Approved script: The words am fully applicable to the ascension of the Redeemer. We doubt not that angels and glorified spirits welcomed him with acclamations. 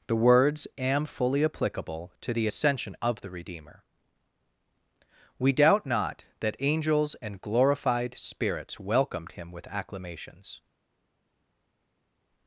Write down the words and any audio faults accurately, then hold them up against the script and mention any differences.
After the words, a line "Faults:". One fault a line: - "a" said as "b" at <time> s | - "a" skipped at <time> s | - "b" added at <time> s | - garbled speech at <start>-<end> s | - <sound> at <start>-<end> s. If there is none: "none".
The words am fully applicable to the ascension of the Redeemer. We doubt not that angels and glorified spirits welcomed him with acclamations.
Faults:
none